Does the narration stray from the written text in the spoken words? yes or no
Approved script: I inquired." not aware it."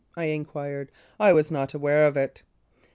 yes